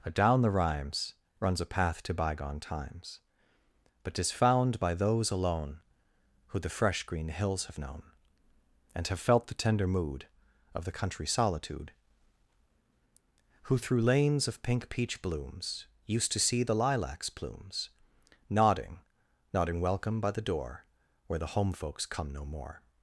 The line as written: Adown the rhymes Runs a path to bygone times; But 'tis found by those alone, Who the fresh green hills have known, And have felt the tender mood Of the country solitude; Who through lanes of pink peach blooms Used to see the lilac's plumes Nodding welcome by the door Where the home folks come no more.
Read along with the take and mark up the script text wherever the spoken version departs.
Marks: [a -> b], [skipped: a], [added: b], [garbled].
Adown the rhymes Runs a path to bygone times; But 'tis found by those alone, Who the fresh green hills have known, And have felt the tender mood Of the country solitude; Who through lanes of pink peach blooms Used to see the lilac's plumes Nodding [added: Nodding] welcome by the door Where the home folks come no more.